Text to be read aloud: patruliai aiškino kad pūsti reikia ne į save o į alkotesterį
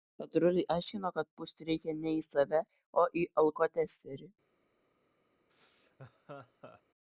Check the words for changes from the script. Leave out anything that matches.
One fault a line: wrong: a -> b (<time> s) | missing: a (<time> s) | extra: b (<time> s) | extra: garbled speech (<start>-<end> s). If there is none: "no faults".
no faults